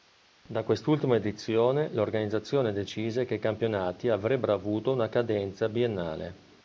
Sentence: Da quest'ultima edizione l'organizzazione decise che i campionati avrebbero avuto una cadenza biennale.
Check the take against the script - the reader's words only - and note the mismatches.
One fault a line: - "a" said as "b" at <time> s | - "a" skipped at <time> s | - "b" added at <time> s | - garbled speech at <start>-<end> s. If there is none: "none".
none